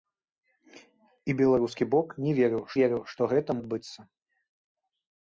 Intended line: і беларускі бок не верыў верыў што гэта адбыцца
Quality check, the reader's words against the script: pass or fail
pass